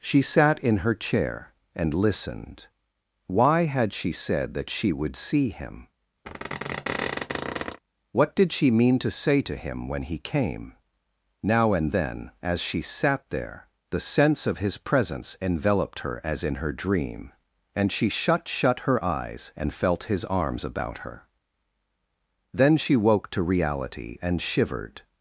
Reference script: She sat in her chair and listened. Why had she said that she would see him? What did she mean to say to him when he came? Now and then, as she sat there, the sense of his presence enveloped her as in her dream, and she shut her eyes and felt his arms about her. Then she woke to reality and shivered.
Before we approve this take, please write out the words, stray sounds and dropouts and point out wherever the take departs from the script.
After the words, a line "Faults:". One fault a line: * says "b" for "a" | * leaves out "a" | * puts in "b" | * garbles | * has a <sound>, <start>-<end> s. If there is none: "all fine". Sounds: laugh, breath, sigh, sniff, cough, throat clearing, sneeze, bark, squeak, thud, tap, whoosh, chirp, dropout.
She sat in her chair and listened. Why had she said that she would see him? What did she mean to say to him when he came? Now and then, as she sat there, the sense of his presence enveloped her as in her dream, and she shut shut her eyes and felt his arms about her. Then she woke to reality and shivered.
Faults:
* has a squeak, 6.2-7.8 s
* puts in "shut"